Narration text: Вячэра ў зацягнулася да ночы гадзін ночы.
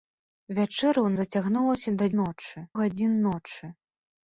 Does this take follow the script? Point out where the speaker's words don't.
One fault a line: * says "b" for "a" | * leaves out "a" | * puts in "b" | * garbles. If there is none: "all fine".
all fine